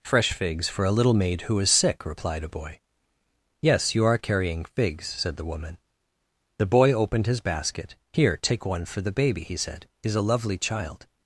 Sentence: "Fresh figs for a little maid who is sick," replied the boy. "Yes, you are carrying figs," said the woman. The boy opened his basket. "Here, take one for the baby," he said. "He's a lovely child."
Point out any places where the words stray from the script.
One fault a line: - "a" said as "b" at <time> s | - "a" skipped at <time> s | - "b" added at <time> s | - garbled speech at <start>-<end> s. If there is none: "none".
- "the" said as "a" at 2.4 s